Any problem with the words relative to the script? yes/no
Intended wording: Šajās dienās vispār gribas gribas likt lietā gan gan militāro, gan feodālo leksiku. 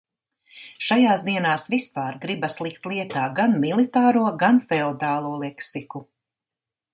yes